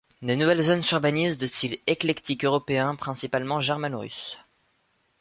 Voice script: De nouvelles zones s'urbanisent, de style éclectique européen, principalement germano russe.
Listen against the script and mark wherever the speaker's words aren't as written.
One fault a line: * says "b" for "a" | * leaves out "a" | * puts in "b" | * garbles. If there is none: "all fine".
all fine